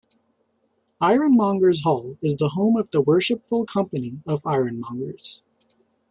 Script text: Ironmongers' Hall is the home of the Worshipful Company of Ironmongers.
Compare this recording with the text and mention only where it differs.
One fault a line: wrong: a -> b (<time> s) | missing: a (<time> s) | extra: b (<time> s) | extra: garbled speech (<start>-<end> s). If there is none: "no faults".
no faults